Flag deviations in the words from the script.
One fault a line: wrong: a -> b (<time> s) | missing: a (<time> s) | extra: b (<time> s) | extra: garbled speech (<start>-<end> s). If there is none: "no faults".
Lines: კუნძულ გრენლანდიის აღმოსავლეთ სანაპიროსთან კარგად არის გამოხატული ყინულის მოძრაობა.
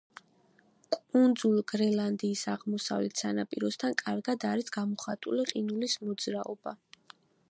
no faults